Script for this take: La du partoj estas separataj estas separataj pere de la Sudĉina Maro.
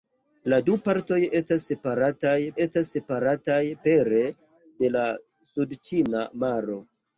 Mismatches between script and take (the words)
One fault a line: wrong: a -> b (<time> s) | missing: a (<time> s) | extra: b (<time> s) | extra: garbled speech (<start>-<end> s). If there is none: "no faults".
no faults